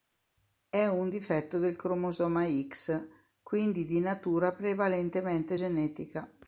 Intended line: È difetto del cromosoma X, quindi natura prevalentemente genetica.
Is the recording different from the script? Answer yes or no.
yes